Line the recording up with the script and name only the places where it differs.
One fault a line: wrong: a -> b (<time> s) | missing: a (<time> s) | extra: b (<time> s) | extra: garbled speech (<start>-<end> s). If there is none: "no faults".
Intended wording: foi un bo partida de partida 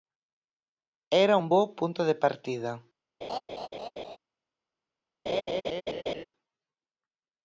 wrong: foi -> era (1.2 s)
wrong: partida -> punto (1.7 s)